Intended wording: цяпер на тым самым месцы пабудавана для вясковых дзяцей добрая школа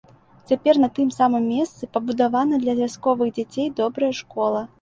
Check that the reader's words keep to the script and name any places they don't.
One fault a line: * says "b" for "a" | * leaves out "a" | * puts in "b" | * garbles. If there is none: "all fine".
all fine